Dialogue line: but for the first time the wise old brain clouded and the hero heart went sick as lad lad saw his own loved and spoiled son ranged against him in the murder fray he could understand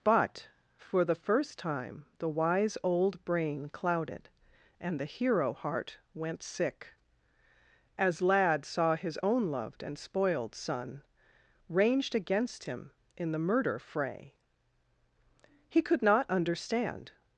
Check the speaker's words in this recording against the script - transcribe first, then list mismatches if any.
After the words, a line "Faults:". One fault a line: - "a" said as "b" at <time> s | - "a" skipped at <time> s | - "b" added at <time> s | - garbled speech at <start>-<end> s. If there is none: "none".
but for the first time the wise old brain clouded and the hero heart went sick as lad saw his own loved and spoiled son ranged against him in the murder fray he could not understand
Faults:
- "lad" skipped at 8.7 s
- "not" added at 16.0 s